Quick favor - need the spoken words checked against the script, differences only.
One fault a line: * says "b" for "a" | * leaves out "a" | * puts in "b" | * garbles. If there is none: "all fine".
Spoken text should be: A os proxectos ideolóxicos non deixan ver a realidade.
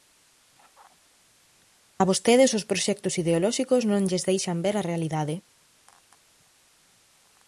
* puts in "vostedes"
* puts in "lles"